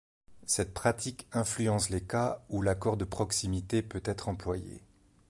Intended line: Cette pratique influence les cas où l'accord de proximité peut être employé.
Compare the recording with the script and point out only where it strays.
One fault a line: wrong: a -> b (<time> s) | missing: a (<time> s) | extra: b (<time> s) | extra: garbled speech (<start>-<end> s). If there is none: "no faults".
no faults